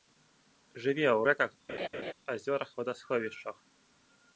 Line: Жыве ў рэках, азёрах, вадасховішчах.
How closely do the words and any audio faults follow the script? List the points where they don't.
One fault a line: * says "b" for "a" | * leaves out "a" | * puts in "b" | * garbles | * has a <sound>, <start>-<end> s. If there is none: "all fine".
* has a laugh, 1.7-2.1 s